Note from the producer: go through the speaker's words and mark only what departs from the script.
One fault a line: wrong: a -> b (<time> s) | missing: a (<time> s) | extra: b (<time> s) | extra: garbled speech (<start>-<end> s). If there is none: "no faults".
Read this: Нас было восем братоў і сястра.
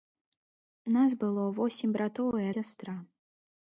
no faults